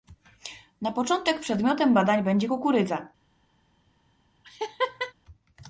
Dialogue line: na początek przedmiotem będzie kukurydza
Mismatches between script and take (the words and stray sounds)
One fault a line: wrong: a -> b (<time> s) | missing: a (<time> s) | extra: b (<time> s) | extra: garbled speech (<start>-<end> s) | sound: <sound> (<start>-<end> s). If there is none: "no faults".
extra: badań (1.9 s)
sound: laugh (4.4-5.1 s)